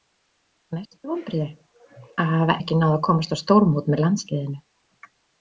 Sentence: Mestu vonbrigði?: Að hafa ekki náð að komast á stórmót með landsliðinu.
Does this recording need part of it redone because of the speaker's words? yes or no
no